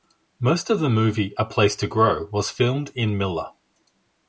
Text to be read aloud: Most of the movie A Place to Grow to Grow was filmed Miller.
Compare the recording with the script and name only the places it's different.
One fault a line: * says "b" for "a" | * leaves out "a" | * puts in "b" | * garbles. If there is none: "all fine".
* leaves out "to Grow"
* puts in "in"